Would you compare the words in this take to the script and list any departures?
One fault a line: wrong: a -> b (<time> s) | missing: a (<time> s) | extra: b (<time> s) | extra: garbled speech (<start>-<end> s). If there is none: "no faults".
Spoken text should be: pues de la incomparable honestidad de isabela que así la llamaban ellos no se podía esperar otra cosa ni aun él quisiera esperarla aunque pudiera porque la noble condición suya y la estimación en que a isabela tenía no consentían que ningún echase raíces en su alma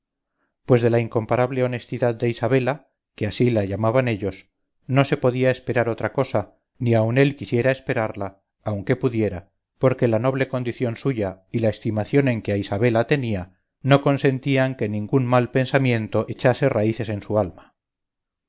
extra: mal pensamiento (15.3 s)